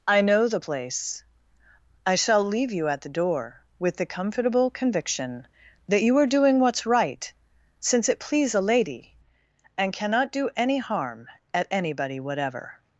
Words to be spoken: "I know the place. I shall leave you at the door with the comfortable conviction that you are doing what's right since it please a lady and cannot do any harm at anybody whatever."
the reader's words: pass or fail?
pass